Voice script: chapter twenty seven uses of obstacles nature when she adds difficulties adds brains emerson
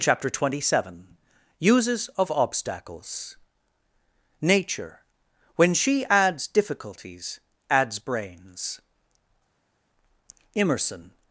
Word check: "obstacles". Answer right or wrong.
right